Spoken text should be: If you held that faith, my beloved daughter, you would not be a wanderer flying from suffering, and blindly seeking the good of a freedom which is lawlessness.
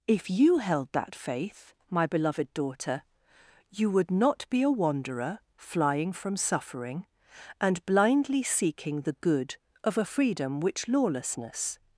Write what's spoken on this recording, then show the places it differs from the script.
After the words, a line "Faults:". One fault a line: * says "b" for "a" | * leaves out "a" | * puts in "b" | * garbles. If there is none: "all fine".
If you held that faith, my beloved daughter, you would not be a wanderer flying from suffering, and blindly seeking the good of a freedom which lawlessness.
Faults:
* leaves out "is"